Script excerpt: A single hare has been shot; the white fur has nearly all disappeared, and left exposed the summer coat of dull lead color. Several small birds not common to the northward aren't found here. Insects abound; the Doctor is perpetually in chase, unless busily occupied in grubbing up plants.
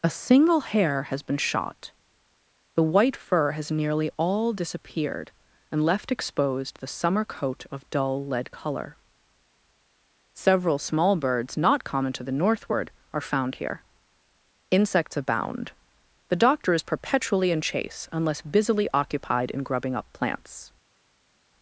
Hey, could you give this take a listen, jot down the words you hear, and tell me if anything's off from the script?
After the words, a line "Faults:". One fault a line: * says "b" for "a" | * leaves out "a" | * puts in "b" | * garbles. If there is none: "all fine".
A single hare has been shot; the white fur has nearly all disappeared, and left exposed the summer coat of dull lead color. Several small birds not common to the northward are found here. Insects abound; the Doctor is perpetually in chase, unless busily occupied in grubbing up plants.
Faults:
* says "are" for "aren't"